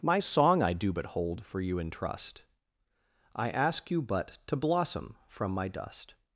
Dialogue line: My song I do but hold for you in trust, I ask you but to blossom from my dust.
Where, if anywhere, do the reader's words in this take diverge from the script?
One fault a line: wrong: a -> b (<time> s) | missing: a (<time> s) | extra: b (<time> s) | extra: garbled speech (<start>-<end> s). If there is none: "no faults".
no faults